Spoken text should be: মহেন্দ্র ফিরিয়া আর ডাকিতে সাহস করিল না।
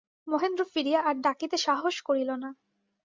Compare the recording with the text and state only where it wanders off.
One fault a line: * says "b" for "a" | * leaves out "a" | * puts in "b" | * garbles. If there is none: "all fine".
all fine